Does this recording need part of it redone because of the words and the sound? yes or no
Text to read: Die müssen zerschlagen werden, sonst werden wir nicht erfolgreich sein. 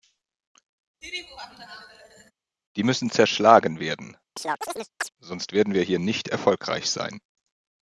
yes